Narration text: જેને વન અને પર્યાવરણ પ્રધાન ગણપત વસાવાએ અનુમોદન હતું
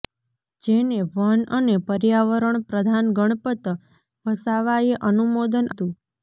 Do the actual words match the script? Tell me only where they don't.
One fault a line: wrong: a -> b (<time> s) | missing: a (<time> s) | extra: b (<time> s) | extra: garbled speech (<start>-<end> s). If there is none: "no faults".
no faults